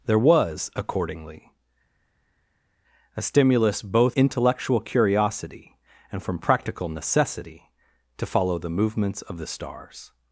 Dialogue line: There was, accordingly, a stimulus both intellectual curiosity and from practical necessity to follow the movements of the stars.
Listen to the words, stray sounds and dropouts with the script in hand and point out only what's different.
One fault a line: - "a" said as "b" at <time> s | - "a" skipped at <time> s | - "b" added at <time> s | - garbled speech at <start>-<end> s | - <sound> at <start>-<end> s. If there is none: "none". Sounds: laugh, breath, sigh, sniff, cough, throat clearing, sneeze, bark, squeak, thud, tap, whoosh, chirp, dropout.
none